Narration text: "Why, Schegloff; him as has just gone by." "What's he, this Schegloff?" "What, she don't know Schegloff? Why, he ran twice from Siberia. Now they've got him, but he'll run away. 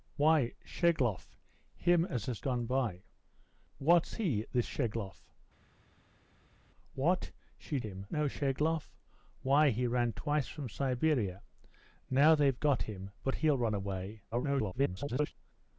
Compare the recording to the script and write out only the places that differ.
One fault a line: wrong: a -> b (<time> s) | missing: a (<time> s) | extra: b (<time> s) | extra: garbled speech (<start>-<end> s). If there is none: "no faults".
missing: just (2.4 s)
wrong: don't -> him (7.8 s)
extra: garbled speech (14.3-15.3 s)